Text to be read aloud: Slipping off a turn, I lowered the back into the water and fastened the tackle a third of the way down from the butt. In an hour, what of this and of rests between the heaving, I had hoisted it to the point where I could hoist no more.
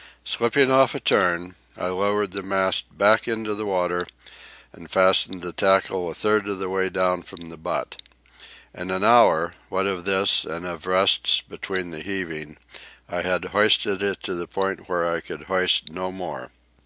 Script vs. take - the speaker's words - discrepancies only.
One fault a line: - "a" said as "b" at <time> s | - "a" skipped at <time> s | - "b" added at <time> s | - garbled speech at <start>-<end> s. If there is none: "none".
- "mast" added at 2.4 s